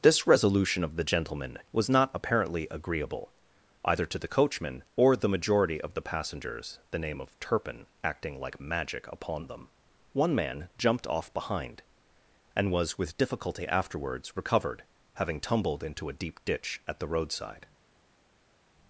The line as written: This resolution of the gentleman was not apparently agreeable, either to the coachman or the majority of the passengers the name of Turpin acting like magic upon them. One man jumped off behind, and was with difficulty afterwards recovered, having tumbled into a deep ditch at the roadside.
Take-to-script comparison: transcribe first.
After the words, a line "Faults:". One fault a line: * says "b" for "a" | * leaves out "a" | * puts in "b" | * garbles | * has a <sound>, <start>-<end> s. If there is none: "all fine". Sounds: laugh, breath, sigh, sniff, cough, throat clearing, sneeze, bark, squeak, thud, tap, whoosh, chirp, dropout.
This resolution of the gentleman was not apparently agreeable, either to the coachman or the majority of the passengers the name of Turpin acting like magic upon them. One man jumped off behind, and was with difficulty afterwards recovered, having tumbled into a deep ditch at the roadside.
Faults:
all fine